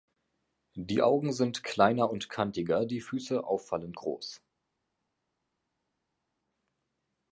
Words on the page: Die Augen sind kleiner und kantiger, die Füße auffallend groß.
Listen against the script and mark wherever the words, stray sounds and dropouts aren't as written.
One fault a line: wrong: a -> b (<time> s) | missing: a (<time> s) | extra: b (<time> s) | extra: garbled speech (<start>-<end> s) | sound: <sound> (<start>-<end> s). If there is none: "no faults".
no faults